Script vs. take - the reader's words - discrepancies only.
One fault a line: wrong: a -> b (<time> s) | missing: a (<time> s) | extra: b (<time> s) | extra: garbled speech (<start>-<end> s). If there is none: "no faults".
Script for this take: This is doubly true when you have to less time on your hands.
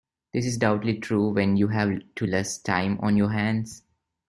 no faults